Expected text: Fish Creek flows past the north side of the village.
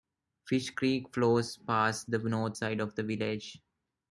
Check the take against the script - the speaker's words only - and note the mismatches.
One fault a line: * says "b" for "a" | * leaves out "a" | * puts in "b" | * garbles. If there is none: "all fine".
all fine